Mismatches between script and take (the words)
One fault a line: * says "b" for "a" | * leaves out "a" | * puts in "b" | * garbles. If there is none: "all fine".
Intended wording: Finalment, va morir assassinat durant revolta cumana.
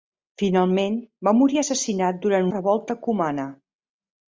all fine